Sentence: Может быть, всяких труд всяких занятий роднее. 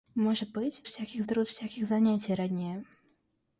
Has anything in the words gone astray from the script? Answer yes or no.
no